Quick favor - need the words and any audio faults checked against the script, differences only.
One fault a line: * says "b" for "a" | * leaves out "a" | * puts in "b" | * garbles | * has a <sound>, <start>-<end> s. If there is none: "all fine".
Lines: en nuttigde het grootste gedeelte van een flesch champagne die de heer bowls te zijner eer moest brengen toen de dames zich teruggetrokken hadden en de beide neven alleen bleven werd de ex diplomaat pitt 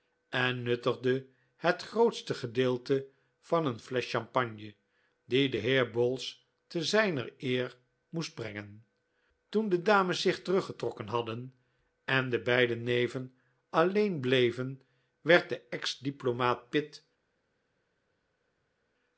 all fine